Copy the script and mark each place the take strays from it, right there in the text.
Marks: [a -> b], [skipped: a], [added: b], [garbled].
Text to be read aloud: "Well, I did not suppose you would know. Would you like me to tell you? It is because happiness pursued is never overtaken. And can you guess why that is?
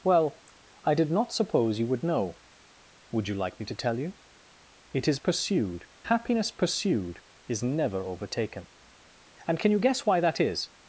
"Well, I did not suppose you would know. Would you like me to tell you? It is [because -> pursued] happiness pursued is never overtaken. And can you guess why that is?